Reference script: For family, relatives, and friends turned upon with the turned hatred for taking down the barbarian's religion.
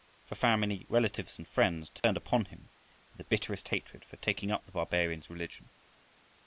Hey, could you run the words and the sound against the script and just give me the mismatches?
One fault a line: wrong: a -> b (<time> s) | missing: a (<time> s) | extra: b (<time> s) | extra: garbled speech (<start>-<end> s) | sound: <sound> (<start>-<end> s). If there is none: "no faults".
sound: dropout (2.0-2.0 s)
extra: him (2.5 s)
wrong: turned -> bitterest (3.2 s)
wrong: down -> up (4.5 s)